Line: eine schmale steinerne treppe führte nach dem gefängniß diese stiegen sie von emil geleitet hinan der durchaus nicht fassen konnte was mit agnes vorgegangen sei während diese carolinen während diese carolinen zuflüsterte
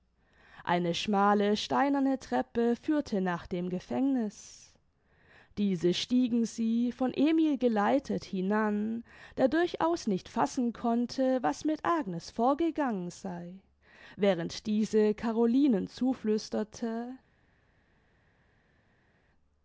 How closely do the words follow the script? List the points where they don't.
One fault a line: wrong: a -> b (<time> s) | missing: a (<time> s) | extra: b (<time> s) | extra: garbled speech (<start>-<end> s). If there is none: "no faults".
missing: während diese carolinen (15.9 s)